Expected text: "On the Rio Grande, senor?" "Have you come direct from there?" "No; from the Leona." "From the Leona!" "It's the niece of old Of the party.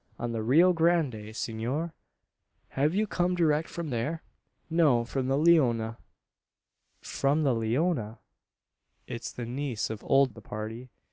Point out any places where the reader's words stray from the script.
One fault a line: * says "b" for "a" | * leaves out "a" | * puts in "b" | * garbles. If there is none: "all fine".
all fine